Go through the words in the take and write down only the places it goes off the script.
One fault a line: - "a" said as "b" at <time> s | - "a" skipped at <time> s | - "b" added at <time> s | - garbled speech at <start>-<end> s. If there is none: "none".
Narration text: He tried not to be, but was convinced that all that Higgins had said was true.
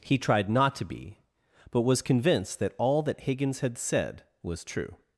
none